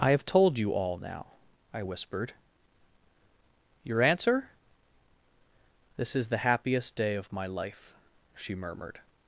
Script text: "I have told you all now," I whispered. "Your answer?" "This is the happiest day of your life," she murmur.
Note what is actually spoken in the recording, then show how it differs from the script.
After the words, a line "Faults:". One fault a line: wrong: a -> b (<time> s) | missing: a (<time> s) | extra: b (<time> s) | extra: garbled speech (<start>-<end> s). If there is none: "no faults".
"I have told you all now," I whispered. "Your answer?" "This is the happiest day of my life," she murmured.
Faults:
wrong: your -> my (7.3 s)
wrong: murmur -> murmured (8.5 s)